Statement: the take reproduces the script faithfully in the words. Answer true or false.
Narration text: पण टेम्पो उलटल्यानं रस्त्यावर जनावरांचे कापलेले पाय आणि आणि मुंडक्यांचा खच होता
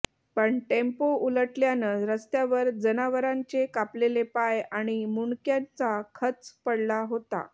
false